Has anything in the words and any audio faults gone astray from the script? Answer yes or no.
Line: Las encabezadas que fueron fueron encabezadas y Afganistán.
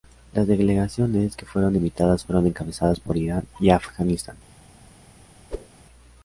yes